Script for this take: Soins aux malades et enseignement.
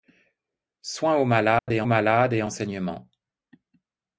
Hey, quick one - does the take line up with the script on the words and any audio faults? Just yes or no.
no